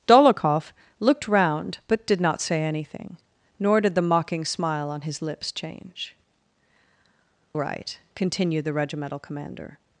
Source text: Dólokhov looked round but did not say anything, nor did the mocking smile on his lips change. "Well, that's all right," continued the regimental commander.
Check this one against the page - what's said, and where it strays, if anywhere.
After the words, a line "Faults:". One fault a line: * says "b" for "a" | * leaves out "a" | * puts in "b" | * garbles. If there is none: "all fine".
Dólokhov looked round but did not say anything, nor did the mocking smile on his lips change. "Right," continued the regimental commander.
Faults:
* leaves out "Well that's all"